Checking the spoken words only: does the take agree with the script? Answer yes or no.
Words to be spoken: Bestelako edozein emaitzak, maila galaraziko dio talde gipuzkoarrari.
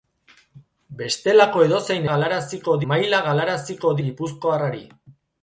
no